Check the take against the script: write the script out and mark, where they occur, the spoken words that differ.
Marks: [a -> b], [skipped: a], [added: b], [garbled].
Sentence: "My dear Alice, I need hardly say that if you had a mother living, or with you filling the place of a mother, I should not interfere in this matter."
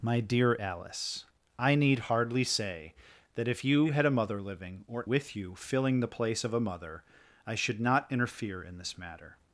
"My dear Alice, I need hardly say that if you had a mother living, or with you filling the place of a mother, I should not interfere in this matter."